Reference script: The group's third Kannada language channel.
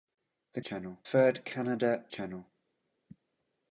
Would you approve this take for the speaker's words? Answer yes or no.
no